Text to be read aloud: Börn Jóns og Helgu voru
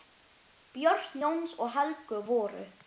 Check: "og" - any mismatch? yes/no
no